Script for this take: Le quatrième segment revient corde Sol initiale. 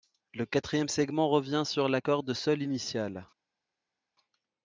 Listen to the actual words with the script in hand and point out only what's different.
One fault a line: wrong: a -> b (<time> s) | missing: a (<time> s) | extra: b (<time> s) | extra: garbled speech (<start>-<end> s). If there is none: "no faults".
extra: sur la (1.6 s)